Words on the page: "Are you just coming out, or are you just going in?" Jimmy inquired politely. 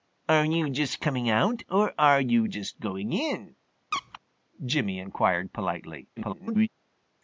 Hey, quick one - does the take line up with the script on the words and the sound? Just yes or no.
no